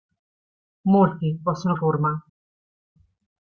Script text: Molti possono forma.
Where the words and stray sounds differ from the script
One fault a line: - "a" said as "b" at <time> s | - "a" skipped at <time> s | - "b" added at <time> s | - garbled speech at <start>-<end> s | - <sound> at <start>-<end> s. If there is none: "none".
none